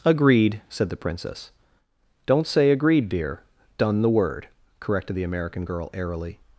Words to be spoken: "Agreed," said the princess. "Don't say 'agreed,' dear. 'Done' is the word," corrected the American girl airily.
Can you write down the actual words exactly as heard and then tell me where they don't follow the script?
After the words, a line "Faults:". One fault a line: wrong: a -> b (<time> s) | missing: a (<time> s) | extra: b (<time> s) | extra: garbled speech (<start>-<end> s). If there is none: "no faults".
"Agreed," said the princess. "Don't say 'agreed,' dear. 'Done' the word," corrected the American girl airily.
Faults:
missing: is (4.0 s)